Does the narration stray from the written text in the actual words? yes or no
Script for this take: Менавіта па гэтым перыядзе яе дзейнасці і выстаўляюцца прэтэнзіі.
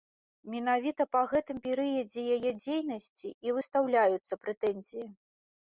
no